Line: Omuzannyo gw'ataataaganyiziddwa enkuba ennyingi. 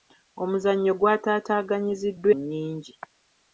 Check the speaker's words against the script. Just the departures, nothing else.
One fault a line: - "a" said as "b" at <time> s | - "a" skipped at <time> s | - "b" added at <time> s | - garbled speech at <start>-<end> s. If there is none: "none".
- "enkuba" skipped at 2.3 s